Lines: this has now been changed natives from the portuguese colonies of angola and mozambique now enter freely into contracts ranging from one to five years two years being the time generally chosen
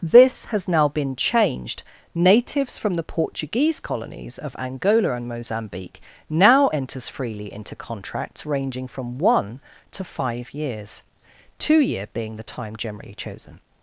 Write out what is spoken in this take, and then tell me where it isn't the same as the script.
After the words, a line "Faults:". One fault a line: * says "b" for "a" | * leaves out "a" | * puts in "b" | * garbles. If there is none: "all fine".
this has now been changed natives from the portuguese colonies of angola and mozambique now enters freely into contracts ranging from one to five years two year being the time generally chosen
Faults:
* says "enters" for "enter"
* says "year" for "years"